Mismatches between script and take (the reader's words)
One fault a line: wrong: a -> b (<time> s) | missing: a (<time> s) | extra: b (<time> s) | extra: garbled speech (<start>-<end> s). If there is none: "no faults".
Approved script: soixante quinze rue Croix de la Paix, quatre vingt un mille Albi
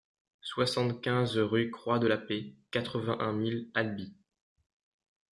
no faults